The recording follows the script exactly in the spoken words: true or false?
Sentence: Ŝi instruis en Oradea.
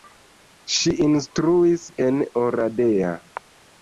true